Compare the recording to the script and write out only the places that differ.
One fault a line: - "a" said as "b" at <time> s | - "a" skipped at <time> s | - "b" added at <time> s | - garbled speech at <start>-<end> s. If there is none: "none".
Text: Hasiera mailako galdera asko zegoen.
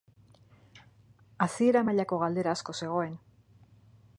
none